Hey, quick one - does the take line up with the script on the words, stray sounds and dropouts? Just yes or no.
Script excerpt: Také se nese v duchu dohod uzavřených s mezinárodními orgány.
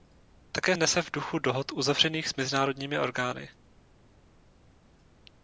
no